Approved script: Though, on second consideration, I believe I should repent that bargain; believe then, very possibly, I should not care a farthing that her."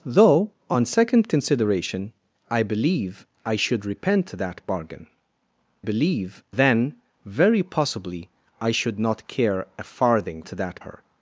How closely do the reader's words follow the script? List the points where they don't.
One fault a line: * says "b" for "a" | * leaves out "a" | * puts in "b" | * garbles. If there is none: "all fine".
all fine